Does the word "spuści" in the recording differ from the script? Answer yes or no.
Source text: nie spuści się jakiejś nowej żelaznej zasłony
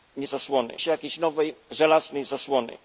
yes